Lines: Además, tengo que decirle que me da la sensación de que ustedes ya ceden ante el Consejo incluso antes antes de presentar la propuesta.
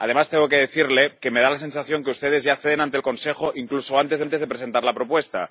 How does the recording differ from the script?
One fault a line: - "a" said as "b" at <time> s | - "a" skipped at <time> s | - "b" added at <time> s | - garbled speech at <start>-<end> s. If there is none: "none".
none